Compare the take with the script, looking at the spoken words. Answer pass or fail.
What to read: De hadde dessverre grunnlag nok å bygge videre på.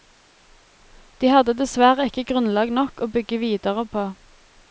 fail